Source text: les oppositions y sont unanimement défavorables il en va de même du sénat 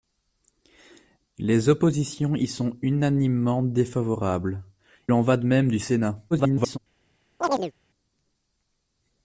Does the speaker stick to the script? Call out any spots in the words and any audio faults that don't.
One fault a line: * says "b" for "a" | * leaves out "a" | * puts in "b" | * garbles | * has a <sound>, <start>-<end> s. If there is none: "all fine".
* leaves out "il"
* garbles
* has a chirp, 7.4-7.7 s